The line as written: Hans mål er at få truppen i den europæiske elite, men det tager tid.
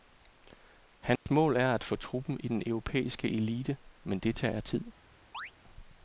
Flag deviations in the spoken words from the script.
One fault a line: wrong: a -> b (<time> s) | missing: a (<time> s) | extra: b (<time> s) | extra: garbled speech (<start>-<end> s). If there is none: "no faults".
no faults